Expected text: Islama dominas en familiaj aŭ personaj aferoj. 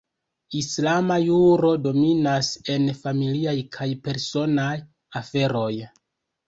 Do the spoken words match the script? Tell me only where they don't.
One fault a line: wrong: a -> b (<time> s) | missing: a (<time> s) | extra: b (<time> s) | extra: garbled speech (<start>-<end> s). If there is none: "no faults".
extra: juro (1.2 s)
wrong: aŭ -> kaj (3.8 s)